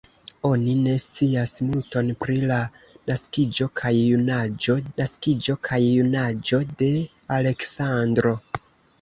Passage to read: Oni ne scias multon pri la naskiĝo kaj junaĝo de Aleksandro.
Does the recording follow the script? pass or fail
fail